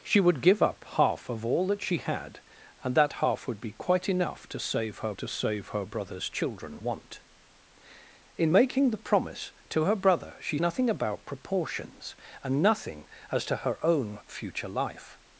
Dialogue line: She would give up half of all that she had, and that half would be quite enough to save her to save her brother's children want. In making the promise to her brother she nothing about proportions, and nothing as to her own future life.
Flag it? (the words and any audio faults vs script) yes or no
no